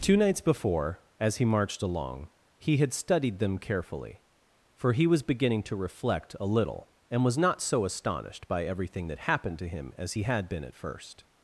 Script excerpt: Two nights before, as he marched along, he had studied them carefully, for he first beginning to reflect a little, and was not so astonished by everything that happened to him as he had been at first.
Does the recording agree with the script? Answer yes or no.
no